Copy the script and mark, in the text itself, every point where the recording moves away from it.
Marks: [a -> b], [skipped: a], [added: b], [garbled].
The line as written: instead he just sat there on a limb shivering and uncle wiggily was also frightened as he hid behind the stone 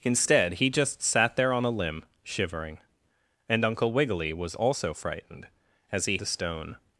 instead he just sat there on a limb shivering and uncle wiggily was also frightened as he [skipped: hid behind] the stone